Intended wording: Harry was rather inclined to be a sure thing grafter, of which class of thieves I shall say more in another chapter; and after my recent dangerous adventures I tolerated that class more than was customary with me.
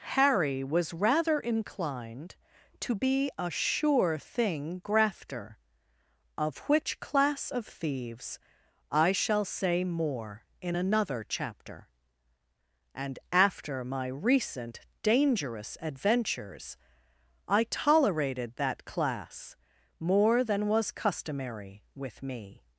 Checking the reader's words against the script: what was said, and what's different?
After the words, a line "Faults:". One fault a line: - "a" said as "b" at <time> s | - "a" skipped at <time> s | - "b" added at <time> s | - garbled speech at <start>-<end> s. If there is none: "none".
Harry was rather inclined to be a sure thing grafter, of which class of thieves I shall say more in another chapter; and after my recent dangerous adventures I tolerated that class more than was customary with me.
Faults:
none